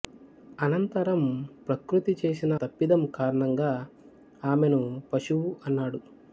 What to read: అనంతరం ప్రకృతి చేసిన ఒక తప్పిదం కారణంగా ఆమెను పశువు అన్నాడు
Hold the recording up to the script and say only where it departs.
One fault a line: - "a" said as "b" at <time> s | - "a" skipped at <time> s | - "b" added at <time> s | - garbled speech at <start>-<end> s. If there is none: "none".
- "ఒక" skipped at 2.6 s